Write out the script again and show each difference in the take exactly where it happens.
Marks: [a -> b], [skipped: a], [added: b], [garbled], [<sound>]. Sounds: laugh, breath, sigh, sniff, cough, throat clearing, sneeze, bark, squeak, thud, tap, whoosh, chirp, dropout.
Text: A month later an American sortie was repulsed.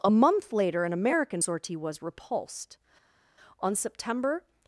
A month later an American sortie was repulsed. [added: On September]